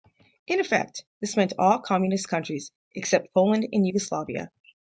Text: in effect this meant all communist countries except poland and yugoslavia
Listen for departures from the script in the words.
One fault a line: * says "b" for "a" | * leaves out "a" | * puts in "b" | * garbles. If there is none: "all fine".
all fine